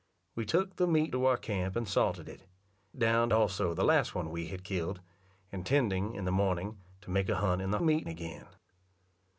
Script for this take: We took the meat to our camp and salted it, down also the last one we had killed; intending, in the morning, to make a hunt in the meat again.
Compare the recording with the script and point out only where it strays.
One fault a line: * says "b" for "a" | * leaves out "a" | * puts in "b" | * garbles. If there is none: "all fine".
all fine